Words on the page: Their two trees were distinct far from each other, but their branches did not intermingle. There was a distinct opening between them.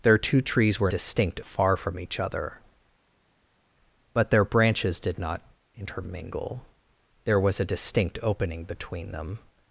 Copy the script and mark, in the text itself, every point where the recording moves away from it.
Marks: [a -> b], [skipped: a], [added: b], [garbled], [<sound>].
Their two trees were distinct far from each other, but their branches did not intermingle. There was a distinct opening between them.